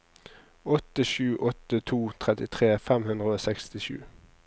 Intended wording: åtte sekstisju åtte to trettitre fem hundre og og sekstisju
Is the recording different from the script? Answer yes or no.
yes